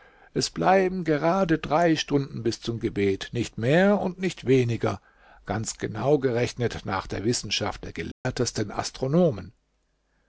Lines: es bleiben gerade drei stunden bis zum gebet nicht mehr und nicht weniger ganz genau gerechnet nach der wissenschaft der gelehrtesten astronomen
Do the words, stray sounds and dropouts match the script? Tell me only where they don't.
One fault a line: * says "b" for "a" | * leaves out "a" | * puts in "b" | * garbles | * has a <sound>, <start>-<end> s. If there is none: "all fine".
* has a dropout, 8.1-8.3 s